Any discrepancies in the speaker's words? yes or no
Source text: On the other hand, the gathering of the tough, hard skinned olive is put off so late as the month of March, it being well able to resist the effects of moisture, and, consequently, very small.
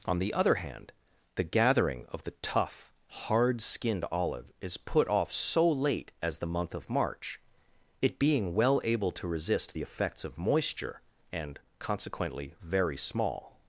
no